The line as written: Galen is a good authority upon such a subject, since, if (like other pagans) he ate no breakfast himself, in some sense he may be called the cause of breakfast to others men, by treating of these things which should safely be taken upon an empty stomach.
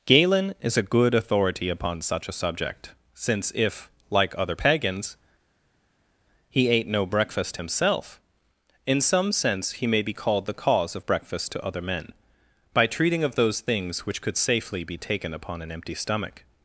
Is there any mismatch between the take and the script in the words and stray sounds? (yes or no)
yes